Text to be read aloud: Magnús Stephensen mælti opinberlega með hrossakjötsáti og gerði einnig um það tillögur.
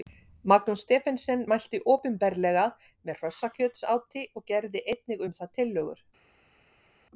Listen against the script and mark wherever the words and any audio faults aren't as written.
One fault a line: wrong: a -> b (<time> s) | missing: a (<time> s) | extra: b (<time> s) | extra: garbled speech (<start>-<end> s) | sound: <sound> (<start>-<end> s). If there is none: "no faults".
no faults